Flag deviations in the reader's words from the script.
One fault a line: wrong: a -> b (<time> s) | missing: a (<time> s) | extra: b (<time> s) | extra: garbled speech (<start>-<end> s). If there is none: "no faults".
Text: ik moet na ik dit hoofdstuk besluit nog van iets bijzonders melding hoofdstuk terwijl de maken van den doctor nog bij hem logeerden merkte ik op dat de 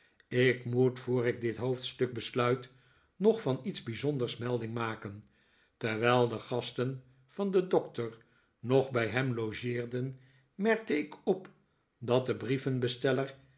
wrong: na -> voor (1.0 s)
wrong: hoofdstuk -> maken (4.7 s)
wrong: maken -> gasten (6.4 s)